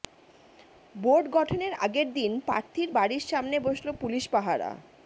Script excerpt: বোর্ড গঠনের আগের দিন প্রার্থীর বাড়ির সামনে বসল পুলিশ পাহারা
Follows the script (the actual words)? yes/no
yes